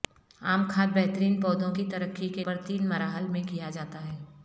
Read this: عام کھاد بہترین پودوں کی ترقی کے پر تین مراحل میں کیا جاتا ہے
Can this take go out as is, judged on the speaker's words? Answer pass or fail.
pass